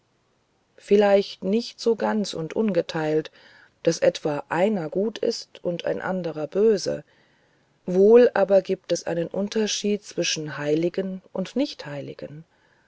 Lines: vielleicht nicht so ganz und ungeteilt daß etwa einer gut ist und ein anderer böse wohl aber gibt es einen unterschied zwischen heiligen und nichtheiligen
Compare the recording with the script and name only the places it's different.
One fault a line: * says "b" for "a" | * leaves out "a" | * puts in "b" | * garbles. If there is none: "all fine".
all fine